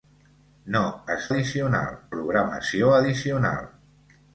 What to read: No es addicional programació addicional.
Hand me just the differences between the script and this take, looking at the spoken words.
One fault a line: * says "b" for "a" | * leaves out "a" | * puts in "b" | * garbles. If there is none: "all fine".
all fine